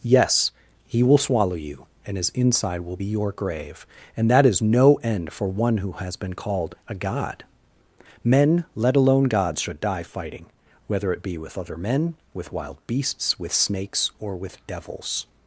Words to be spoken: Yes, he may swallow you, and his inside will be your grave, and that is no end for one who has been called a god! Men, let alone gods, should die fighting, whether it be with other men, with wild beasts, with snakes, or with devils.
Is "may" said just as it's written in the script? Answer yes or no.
no